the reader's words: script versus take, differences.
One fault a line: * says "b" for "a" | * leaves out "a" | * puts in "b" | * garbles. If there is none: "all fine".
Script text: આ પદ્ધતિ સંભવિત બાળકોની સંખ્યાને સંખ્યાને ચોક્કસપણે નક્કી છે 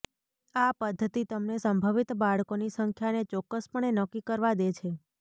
* puts in "તમને"
* leaves out "સંખ્યાને"
* puts in "કરવા દે"